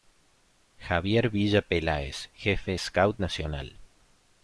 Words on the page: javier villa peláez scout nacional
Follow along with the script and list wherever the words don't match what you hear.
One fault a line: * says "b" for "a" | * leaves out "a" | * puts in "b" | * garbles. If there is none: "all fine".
* puts in "jefe"